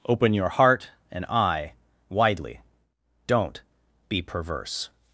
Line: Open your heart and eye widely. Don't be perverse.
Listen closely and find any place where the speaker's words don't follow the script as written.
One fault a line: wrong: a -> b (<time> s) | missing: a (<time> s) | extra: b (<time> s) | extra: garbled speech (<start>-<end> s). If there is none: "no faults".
no faults